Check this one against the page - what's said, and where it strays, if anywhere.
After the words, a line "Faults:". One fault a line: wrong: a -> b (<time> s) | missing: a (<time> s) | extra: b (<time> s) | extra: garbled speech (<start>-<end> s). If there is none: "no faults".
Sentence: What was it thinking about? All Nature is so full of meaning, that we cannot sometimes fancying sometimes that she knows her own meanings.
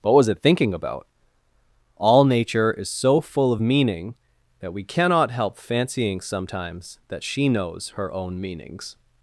What was it thinking about? All Nature is so full of meaning, that we cannot help fancying sometimes that she knows her own meanings.
Faults:
wrong: sometimes -> help (5.3 s)